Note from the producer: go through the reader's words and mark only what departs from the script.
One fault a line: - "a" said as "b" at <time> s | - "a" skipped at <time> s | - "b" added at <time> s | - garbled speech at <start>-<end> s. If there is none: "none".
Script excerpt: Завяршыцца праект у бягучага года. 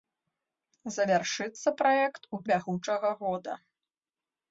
none